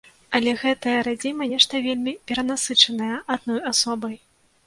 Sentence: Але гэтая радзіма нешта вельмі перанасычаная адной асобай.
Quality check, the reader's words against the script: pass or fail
pass